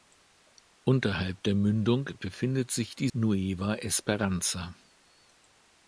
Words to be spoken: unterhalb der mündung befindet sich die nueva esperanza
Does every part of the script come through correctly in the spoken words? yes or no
yes